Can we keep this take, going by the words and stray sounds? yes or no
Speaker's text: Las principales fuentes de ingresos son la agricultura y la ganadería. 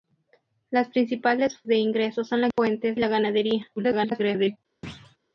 no